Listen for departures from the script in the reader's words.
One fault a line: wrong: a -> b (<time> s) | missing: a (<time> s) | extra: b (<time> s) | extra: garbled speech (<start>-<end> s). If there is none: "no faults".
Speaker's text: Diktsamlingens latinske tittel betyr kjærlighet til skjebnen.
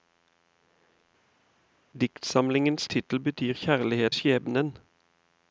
missing: latinske (2.9 s)
missing: til (4.1 s)